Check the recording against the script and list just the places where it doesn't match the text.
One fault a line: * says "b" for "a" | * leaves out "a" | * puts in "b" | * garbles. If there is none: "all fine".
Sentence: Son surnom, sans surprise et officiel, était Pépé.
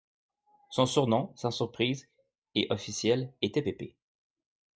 all fine